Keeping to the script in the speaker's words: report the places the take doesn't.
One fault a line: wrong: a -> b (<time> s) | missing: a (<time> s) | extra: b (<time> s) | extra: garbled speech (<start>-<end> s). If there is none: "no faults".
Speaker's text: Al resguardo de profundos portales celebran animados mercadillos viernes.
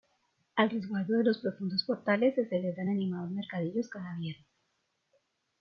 extra: los (1.2 s)
extra: se (2.3 s)
extra: cada (3.9 s)